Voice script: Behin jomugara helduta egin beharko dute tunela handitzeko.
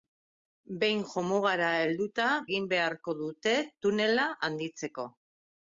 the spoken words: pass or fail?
pass